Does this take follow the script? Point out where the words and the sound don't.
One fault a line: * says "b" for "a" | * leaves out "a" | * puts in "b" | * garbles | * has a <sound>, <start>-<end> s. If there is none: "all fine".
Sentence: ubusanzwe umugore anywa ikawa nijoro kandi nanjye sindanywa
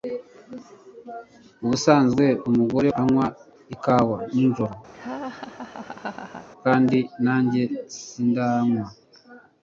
* has a laugh, 4.9-6.5 s